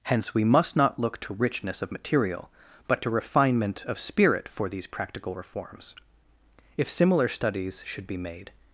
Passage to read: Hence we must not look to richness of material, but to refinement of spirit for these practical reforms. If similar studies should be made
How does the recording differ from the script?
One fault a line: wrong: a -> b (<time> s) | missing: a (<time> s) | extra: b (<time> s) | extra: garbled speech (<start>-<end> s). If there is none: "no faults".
no faults